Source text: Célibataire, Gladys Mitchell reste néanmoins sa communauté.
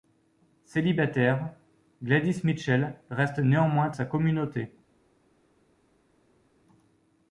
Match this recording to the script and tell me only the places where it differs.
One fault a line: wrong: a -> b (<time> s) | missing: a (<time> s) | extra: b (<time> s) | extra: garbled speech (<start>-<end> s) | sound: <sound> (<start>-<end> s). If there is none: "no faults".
no faults